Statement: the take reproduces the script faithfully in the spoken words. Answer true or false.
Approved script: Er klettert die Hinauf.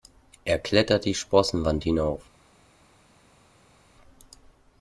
false